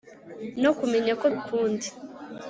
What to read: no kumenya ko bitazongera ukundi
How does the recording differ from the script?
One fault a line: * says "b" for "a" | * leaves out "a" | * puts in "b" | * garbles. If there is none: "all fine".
* leaves out "bitazongera"